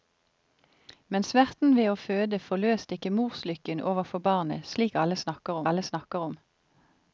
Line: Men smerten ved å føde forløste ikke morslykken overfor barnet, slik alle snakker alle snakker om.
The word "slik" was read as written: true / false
true